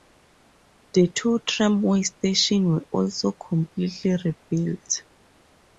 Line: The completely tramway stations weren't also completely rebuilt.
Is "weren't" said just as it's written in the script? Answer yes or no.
no